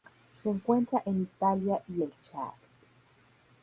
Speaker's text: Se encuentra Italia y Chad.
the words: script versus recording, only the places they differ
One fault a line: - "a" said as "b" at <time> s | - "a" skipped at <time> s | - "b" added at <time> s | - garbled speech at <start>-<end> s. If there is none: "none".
- "en" added at 1.1 s
- "el" added at 2.0 s